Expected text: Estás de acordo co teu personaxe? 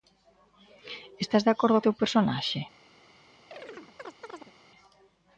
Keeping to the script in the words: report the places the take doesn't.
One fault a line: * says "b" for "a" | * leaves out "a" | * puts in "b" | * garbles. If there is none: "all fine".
* leaves out "co"